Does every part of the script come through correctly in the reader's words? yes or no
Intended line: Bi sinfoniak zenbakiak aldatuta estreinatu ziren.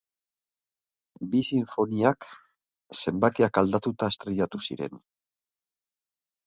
yes